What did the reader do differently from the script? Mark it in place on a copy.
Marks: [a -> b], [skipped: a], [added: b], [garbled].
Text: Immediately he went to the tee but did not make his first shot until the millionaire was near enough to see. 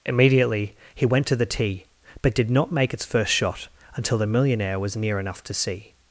Immediately he went to the tee but did not make [his -> its] first shot until the millionaire was near enough to see.